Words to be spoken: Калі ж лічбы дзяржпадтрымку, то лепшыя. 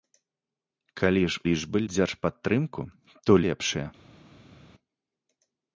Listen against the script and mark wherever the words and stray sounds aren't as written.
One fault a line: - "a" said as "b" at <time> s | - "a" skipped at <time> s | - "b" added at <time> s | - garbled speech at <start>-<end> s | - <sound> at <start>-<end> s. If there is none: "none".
none